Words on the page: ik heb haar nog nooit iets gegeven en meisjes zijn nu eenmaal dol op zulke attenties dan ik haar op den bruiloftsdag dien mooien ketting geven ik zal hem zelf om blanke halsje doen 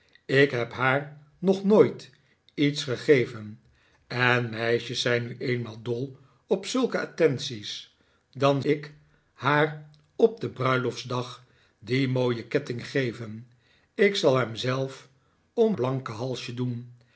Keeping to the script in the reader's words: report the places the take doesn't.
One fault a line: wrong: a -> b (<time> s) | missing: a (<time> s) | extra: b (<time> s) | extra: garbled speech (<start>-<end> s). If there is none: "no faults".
no faults